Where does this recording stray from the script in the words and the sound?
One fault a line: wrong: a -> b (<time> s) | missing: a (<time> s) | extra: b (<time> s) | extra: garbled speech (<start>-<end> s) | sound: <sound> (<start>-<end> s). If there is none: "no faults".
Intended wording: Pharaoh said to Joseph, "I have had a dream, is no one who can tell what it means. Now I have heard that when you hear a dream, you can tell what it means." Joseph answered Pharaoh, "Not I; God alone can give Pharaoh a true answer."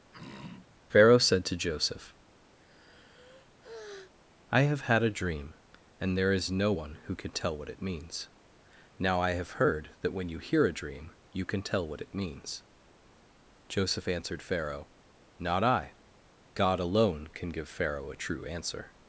sound: throat clearing (0.1-0.8 s)
sound: sigh (2.6-4.1 s)
extra: and there (6.0 s)